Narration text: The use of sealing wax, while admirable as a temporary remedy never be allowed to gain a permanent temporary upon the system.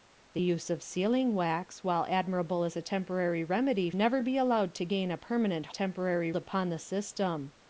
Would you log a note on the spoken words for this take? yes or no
no